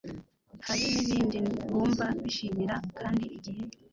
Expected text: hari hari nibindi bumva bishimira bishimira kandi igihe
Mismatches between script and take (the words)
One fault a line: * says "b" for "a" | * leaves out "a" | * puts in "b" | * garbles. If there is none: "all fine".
* leaves out "hari"
* leaves out "bishimira"